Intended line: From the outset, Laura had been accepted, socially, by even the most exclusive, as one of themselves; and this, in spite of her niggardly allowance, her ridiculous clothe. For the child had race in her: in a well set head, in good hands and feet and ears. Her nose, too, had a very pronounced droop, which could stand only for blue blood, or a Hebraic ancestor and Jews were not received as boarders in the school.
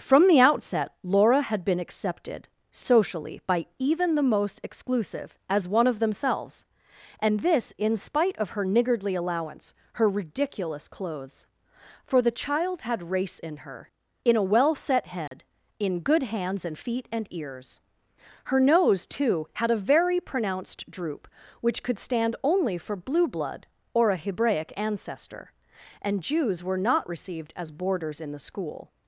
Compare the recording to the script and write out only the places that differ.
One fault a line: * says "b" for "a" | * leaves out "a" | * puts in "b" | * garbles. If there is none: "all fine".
* says "clothes" for "clothe"